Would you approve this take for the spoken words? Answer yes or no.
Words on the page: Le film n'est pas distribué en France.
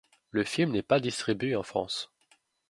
yes